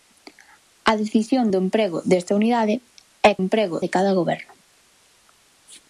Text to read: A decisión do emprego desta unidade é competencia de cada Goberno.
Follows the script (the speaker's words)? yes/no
no